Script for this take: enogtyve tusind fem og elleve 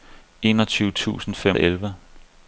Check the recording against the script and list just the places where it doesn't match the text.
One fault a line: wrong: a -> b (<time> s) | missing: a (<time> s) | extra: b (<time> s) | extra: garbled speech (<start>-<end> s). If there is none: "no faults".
no faults